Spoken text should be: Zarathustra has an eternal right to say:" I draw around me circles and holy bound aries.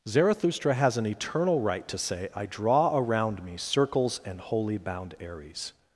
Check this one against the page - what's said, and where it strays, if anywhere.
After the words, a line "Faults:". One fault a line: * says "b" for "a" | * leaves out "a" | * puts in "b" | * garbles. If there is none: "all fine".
Zarathustra has an eternal right to say:" I draw around me circles and holy bound aries.
Faults:
all fine